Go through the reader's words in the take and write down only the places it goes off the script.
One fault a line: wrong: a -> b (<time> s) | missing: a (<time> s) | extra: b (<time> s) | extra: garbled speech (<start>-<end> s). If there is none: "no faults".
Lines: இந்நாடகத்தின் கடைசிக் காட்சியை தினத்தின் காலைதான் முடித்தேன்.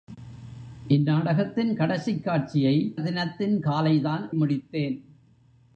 no faults